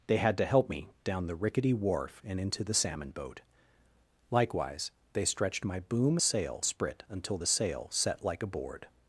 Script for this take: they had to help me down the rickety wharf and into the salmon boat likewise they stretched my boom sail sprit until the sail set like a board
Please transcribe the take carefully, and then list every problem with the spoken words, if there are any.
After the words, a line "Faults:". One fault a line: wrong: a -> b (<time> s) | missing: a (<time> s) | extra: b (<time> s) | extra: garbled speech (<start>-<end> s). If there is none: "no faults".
they had to help me down the rickety wharf and into the salmon boat likewise they stretched my boom sail sprit until the sail set like a board
Faults:
no faults